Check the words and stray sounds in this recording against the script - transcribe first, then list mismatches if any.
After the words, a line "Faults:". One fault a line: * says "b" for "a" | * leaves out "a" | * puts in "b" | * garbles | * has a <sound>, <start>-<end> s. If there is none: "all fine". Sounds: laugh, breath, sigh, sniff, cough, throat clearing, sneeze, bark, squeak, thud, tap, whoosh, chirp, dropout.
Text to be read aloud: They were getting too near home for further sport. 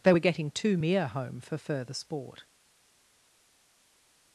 They were getting too mere home for further sport.
Faults:
* says "mere" for "near"